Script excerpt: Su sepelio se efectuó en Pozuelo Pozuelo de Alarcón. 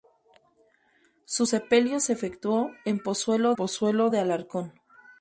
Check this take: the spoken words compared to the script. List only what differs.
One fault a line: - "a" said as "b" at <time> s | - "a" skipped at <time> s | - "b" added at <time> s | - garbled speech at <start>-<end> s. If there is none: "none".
none